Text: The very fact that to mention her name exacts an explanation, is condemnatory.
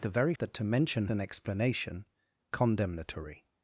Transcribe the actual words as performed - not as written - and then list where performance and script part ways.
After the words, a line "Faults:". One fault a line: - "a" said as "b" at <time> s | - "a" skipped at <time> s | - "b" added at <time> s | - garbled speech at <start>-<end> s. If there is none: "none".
The very that to mention an explanation, condemnatory.
Faults:
- "fact" skipped at 0.3 s
- "her name exacts" skipped at 1.1 s
- "is" skipped at 2.0 s